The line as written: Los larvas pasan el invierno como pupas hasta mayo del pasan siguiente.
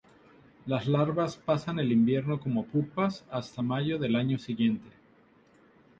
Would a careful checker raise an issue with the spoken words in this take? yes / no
yes